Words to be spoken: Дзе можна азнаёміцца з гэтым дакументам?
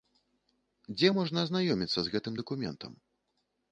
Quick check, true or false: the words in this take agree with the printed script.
true